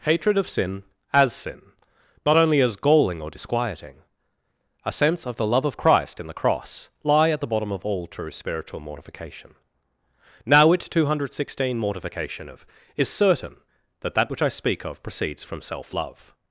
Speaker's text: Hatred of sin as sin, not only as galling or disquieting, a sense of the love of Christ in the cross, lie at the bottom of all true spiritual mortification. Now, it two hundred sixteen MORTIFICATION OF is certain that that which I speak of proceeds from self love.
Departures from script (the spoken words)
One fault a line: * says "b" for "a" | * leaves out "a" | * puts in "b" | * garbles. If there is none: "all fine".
all fine